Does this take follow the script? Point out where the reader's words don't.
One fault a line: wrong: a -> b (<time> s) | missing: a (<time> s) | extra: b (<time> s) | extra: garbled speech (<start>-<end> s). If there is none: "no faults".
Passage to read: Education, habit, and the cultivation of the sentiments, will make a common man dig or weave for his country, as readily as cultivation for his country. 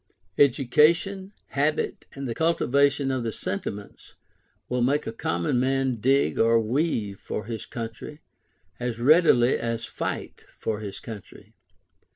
wrong: cultivation -> fight (9.9 s)